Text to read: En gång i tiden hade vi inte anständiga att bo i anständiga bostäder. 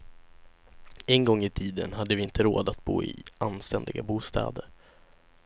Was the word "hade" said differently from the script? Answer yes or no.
no